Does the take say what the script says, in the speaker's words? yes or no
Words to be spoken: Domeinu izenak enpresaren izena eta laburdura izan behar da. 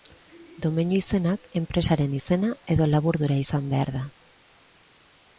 no